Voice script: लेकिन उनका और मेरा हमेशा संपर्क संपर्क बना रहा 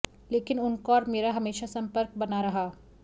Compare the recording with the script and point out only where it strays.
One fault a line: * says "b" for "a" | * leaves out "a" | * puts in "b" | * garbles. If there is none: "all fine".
* leaves out "संपर्क"